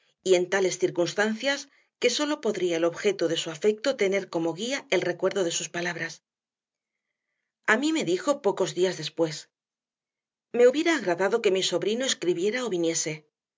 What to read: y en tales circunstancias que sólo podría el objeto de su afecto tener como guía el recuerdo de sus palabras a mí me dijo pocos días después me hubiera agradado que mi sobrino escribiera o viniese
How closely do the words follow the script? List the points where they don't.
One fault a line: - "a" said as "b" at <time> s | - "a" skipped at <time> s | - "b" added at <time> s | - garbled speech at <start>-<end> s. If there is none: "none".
none